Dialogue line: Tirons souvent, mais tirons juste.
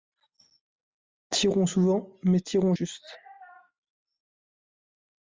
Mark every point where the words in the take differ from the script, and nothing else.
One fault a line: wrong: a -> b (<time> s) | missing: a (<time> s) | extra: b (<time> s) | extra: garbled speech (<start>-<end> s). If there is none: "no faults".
no faults